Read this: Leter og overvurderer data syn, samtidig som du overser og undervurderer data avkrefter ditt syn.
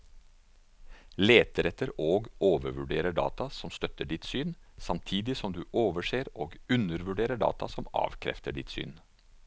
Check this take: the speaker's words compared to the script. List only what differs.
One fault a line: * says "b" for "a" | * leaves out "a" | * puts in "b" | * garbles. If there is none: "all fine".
* puts in "etter"
* puts in "som støtter ditt"
* puts in "som"